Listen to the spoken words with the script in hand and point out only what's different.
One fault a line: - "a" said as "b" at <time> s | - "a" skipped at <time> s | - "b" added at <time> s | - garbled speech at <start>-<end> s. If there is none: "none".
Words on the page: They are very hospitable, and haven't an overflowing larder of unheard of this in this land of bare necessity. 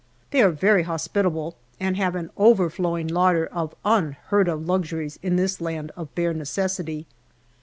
- "haven't" said as "have" at 1.9 s
- "this" said as "luxuries" at 4.7 s